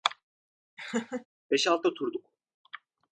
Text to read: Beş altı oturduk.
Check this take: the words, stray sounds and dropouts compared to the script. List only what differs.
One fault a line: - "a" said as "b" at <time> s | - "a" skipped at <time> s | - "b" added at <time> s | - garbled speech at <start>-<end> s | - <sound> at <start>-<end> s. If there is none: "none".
- laugh at 0.8-1.3 s